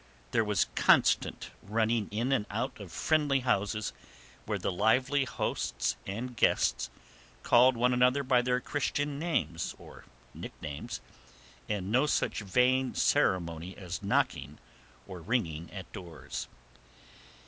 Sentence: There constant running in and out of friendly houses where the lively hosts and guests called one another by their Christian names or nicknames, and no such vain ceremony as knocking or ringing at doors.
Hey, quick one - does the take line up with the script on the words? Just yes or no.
no